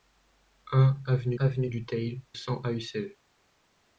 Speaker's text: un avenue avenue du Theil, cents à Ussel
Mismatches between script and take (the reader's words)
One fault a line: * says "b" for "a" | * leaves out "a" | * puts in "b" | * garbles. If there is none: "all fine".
all fine